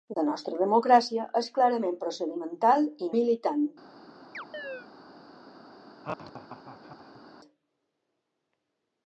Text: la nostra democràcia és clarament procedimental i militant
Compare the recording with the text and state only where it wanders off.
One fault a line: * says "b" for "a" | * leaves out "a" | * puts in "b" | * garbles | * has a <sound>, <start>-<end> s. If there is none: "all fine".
* has a chirp, 4.3-4.9 s
* has a laugh, 6.0-7.2 s